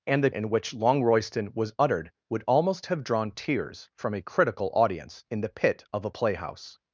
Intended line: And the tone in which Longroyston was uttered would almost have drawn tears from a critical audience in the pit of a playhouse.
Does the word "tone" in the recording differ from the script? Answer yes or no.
yes